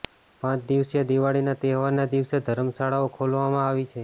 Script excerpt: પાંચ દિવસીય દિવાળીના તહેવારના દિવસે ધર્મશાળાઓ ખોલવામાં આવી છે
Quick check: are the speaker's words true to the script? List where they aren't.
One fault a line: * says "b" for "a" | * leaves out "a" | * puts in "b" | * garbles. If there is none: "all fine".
all fine